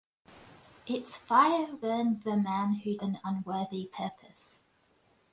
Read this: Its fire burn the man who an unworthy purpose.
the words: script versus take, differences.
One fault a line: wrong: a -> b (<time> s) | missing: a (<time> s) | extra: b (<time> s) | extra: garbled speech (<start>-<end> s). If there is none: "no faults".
no faults